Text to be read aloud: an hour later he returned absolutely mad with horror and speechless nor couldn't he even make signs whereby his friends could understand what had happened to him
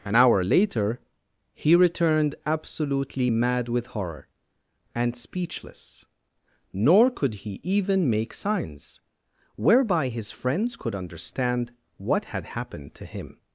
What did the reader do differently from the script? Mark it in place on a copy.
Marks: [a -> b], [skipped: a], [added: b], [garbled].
an hour later he returned absolutely mad with horror and speechless nor [couldn't -> could] he even make signs whereby his friends could understand what had happened to him